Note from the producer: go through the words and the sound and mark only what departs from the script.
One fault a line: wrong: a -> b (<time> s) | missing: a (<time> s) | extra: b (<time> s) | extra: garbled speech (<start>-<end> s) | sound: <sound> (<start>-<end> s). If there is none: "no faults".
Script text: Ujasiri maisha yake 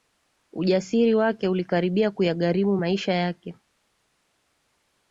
extra: wake ulikaribia kuyagharimu (1.1 s)